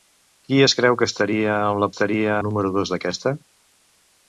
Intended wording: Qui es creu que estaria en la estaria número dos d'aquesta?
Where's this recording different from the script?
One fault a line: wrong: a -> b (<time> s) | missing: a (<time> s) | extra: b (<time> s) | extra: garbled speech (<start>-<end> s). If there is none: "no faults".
no faults